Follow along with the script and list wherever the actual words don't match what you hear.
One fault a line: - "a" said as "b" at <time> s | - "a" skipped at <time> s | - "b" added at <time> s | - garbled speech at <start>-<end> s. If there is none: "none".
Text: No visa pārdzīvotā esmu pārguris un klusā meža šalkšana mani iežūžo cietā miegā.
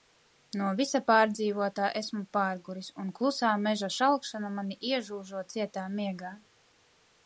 none